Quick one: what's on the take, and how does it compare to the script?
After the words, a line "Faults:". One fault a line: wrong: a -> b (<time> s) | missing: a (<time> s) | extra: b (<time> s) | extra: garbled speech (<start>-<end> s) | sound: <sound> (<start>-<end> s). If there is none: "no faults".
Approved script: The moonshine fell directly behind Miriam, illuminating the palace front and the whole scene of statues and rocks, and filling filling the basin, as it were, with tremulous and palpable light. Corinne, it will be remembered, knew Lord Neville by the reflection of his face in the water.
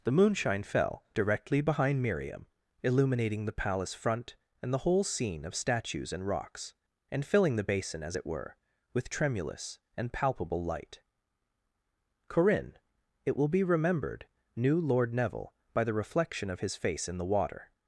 The moonshine fell directly behind Miriam, illuminating the palace front and the whole scene of statues and rocks, and filling the basin, as it were, with tremulous and palpable light. Corinne, it will be remembered, knew Lord Neville by the reflection of his face in the water.
Faults:
missing: filling (7.5 s)